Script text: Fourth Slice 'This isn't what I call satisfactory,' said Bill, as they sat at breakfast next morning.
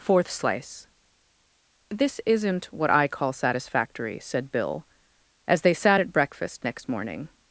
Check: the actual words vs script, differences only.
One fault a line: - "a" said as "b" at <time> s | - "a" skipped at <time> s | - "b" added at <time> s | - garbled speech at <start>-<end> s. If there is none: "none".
none